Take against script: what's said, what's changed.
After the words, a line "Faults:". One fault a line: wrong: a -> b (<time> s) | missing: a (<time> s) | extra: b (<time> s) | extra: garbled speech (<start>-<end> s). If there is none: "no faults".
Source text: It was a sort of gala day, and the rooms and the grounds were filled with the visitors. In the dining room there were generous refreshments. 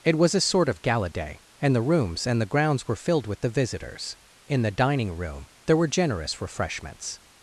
It was a sort of gala day, and the rooms and the grounds were filled with the visitors. In the dining room there were generous refreshments.
Faults:
no faults